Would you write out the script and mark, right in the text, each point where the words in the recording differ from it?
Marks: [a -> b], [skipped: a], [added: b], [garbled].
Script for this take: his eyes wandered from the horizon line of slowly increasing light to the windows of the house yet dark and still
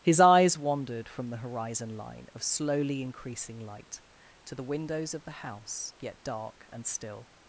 his eyes wandered from the horizon line of slowly increasing light to the windows of the house yet dark and still